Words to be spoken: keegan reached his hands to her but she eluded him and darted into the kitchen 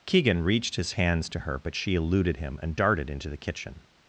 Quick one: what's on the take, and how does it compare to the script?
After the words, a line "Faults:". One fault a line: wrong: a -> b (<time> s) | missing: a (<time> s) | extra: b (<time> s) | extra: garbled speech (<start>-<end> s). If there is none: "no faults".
keegan reached his hands to her but she eluded him and darted into the kitchen
Faults:
no faults